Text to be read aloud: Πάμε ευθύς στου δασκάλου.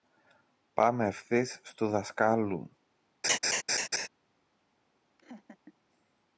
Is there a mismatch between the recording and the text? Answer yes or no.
no